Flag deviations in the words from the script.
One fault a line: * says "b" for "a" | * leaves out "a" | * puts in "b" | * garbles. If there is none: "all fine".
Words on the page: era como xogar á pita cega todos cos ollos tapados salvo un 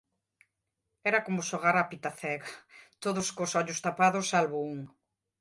all fine